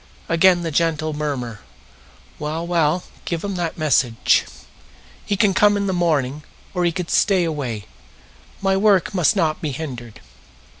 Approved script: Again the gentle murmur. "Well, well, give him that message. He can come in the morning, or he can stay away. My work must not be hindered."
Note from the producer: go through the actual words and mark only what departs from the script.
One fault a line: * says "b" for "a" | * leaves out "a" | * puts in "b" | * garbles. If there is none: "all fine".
all fine